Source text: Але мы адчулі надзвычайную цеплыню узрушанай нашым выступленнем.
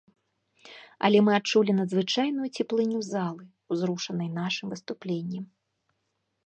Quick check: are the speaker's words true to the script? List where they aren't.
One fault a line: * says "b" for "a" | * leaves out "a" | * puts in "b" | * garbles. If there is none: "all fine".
* puts in "залы"